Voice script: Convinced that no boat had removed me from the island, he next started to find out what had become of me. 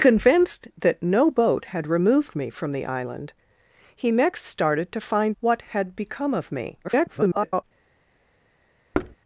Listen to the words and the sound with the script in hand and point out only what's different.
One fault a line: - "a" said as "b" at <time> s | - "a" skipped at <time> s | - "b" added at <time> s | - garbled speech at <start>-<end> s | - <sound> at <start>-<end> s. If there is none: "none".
- "out" skipped at 5.4 s
- garbled speech at 6.8-7.6 s
- thud at 8.9-9.2 s